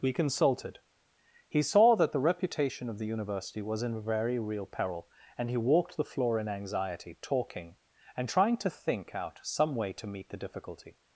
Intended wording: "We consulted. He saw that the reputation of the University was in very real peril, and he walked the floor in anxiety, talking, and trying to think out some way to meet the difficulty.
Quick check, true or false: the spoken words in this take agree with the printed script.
true